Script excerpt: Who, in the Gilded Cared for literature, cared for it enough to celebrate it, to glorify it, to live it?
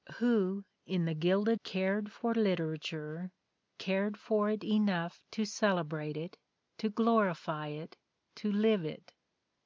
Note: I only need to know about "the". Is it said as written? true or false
true